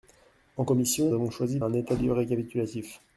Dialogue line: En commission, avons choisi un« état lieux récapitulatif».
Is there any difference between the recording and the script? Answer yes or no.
no